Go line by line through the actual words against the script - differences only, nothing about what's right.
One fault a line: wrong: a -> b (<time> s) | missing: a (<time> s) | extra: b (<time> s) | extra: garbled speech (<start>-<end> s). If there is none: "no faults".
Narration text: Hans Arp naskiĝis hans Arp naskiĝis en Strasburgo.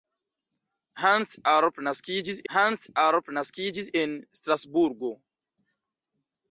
no faults